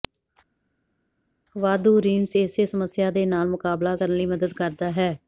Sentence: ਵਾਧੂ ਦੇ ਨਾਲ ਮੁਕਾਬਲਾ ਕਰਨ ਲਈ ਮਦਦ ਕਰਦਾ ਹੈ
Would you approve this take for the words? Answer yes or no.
no